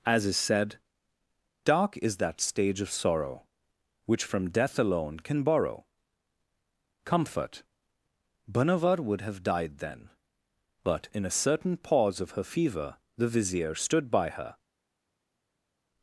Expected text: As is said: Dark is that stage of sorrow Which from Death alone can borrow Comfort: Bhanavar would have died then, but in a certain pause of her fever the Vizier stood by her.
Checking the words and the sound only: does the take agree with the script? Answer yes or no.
yes